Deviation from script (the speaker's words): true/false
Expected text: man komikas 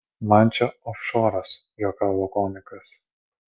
true